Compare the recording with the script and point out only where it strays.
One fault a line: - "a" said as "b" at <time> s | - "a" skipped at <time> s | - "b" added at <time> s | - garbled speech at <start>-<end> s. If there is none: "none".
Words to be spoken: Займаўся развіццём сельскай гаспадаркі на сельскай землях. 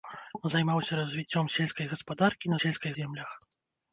none